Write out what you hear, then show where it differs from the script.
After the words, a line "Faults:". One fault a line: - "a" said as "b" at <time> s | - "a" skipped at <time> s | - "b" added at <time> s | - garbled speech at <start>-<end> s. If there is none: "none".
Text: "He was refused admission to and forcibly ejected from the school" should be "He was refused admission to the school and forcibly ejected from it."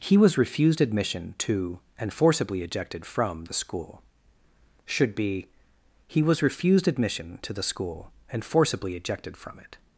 "He was refused admission to and forcibly ejected from the school" should be "He was refused admission to the school and forcibly ejected from it."
Faults:
none